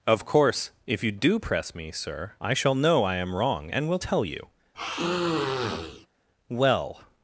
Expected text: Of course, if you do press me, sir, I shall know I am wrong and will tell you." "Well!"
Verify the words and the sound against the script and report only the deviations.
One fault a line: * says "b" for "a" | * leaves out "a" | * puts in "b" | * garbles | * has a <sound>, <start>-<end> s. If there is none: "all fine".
* has a sniff, 4.7-6.1 s